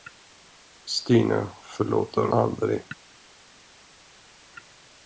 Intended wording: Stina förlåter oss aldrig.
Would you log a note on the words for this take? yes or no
yes